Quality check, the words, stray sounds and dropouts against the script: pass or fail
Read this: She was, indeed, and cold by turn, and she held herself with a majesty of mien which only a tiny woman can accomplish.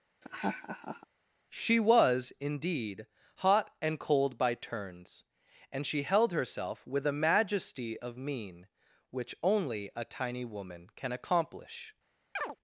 fail